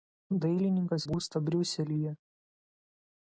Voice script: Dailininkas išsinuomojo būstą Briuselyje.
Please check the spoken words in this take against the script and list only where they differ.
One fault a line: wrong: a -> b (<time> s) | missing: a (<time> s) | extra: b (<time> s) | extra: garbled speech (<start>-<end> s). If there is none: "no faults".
missing: išsinuomojo (1.1 s)